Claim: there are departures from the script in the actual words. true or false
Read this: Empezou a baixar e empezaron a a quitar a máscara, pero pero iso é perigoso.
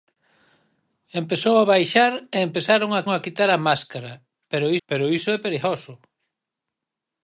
false